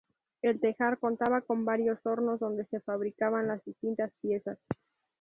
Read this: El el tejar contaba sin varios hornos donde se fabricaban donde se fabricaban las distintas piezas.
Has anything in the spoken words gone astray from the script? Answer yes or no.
yes